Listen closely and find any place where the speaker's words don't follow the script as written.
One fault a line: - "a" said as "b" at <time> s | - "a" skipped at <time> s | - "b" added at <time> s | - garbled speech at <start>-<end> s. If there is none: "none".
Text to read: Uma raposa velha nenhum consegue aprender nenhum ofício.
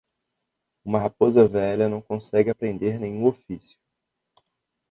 - "nenhum" said as "não" at 1.9 s